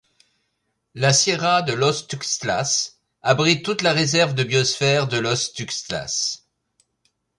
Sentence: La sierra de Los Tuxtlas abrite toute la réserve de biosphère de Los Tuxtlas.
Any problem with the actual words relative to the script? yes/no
no